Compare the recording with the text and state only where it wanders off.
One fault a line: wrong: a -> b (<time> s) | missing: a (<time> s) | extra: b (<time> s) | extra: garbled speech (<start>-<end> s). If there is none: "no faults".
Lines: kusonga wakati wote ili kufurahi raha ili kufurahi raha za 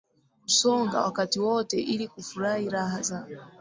missing: ili kufurahi raha (3.0 s)